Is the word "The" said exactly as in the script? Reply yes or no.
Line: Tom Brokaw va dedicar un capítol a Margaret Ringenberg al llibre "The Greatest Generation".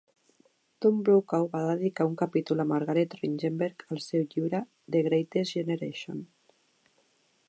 yes